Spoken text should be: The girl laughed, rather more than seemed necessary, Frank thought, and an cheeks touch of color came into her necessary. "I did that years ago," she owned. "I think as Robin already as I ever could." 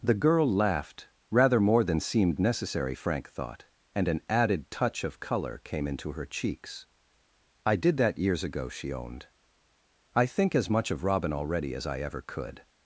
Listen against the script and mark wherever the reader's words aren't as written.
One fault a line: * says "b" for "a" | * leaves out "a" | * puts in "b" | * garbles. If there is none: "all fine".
* says "added" for "cheeks"
* says "cheeks" for "necessary"
* puts in "much of"